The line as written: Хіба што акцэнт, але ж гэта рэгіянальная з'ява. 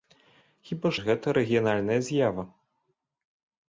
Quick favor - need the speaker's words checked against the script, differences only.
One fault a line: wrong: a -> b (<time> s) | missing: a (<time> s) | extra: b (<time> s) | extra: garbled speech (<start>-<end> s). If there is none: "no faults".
missing: што акцэнт але (0.9 s)